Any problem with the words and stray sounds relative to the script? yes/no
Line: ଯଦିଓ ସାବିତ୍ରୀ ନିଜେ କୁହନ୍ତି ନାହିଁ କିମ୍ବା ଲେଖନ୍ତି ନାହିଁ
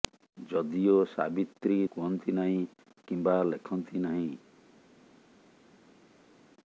yes